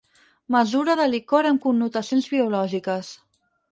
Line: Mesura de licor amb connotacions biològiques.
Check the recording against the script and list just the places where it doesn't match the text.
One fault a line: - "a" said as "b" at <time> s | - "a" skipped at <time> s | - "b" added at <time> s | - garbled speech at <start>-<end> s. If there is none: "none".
none